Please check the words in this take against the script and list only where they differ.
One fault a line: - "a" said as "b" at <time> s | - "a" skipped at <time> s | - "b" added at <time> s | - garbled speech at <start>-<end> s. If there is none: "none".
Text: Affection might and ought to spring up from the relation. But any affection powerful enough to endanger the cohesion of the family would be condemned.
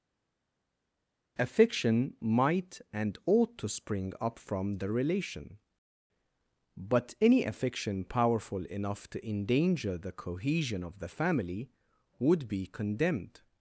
none